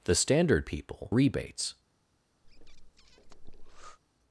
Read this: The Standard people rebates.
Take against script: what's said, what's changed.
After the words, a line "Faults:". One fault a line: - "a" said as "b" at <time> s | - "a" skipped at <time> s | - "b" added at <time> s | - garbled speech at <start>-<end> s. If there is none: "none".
The Standard people rebates.
Faults:
none